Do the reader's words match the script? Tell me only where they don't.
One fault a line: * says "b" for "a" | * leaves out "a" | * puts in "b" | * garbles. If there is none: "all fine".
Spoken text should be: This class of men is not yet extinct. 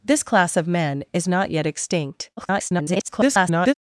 * garbles